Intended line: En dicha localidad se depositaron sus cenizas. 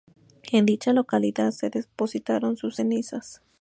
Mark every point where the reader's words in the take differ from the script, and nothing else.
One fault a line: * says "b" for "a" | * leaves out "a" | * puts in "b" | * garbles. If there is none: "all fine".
all fine